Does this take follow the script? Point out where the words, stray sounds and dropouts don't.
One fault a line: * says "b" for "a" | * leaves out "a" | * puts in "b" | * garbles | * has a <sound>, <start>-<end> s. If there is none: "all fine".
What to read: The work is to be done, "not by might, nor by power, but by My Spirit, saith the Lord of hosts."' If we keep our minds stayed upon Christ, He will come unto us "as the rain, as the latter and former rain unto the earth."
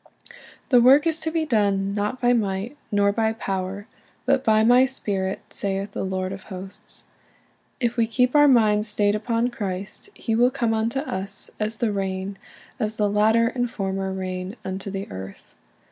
all fine